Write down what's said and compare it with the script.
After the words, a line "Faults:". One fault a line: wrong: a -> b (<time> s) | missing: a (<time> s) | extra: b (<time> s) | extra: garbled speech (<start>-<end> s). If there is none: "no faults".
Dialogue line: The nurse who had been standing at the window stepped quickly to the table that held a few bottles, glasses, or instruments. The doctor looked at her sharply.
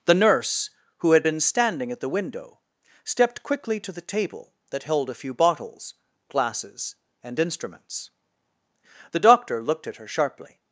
The nurse who had been standing at the window stepped quickly to the table that held a few bottles, glasses, and instruments. The doctor looked at her sharply.
Faults:
wrong: or -> and (7.2 s)